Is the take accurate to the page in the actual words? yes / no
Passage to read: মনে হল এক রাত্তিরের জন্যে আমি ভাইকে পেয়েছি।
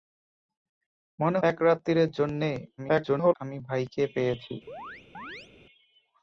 no